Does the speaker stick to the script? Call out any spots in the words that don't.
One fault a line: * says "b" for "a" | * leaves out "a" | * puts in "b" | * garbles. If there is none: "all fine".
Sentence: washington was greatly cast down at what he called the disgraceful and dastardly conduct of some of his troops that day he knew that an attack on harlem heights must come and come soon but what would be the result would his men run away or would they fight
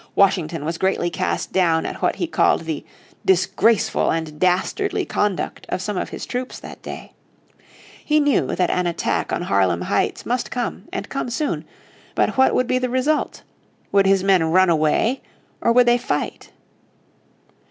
all fine